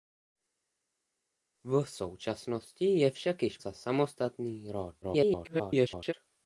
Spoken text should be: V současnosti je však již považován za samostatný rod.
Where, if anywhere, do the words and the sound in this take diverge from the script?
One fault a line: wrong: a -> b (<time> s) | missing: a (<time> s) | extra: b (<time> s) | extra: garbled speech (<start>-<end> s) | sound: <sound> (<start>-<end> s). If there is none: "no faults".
missing: považován (3.6 s)
extra: garbled speech (5.0-6.1 s)